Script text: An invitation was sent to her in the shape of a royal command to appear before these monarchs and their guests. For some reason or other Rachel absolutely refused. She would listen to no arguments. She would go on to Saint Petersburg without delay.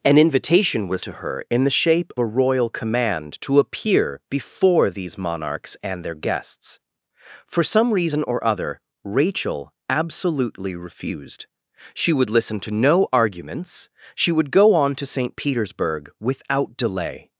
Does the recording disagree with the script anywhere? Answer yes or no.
yes